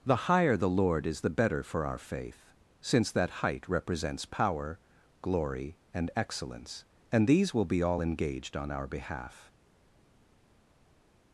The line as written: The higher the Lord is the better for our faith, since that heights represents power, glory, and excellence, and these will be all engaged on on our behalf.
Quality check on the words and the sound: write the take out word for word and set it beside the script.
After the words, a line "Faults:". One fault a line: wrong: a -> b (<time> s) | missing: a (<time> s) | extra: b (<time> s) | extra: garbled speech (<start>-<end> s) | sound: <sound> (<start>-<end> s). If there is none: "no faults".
The higher the Lord is the better for our faith, since that height represents power, glory, and excellence, and these will be all engaged on our behalf.
Faults:
wrong: heights -> height (3.5 s)
missing: on (8.7 s)